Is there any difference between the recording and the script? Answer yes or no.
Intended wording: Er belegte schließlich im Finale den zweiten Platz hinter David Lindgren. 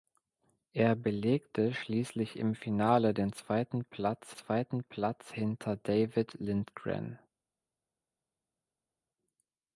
yes